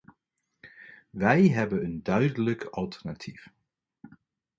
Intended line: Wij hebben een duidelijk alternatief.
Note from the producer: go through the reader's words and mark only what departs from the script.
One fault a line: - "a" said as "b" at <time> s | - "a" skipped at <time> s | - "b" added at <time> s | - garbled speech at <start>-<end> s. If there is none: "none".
none